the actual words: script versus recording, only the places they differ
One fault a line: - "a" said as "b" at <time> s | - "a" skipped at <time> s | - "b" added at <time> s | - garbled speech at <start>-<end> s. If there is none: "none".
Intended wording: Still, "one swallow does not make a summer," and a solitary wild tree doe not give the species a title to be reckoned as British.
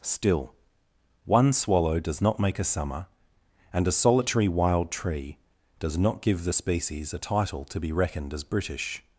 - "doe" said as "does" at 5.8 s